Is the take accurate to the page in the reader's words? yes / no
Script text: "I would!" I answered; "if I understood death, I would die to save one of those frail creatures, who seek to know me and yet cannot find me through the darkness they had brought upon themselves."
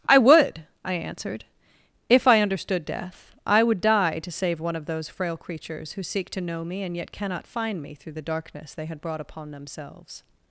yes